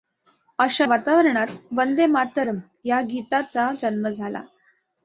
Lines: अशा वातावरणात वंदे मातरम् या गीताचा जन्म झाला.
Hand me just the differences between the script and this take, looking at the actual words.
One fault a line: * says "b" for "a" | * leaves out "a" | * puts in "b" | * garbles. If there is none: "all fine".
all fine